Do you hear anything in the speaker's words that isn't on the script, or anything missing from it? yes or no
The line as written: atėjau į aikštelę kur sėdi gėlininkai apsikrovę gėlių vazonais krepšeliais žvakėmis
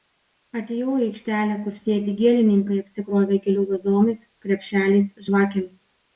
no